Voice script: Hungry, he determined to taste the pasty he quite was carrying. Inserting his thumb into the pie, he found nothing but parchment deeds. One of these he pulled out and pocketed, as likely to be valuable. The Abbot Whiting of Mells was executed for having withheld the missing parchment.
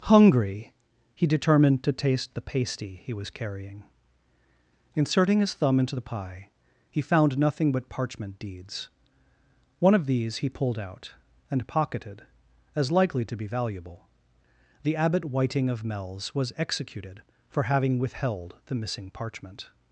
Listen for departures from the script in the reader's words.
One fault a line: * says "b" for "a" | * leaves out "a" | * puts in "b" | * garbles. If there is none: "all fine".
* leaves out "quite"